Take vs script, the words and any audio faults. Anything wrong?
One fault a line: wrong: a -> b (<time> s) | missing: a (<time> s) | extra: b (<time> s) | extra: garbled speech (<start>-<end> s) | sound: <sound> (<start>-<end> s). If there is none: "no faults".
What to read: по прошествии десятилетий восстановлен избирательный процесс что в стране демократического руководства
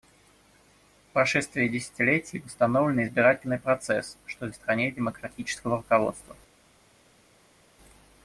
no faults